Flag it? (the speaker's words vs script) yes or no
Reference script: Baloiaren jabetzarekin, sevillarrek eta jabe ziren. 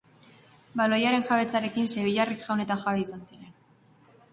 yes